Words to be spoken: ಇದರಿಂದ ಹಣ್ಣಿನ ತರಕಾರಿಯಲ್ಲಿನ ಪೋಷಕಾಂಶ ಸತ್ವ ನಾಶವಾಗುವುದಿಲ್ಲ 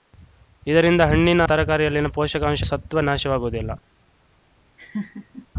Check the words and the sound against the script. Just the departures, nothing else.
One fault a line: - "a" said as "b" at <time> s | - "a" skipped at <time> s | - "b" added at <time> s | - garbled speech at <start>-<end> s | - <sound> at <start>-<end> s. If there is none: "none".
- laugh at 4.8-5.5 s